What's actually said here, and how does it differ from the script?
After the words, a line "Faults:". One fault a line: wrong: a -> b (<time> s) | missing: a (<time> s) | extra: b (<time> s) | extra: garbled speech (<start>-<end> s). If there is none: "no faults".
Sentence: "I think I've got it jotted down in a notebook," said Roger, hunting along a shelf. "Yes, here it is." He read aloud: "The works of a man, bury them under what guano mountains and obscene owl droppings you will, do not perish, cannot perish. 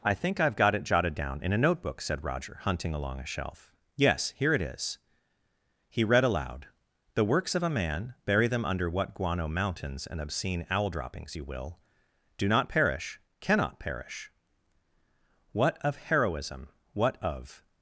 "I think I've got it jotted down in a notebook," said Roger, hunting along a shelf. "Yes, here it is." He read aloud: "The works of a man, bury them under what guano mountains and obscene owl droppings you will, do not perish, cannot perish. What of Heroism, what of
Faults:
extra: What of Heroism what of (15.5 s)